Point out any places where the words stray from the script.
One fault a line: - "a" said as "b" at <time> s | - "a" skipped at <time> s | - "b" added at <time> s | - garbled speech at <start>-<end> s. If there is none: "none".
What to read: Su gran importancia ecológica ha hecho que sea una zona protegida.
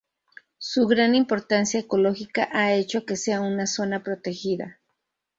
none